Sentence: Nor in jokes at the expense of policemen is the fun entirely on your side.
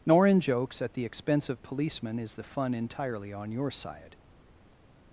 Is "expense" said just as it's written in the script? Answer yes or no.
yes